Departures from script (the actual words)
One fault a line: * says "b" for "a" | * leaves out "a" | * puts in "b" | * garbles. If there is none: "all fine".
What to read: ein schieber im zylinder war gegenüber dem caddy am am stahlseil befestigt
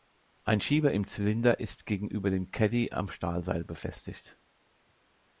* says "ist" for "war"
* leaves out "am"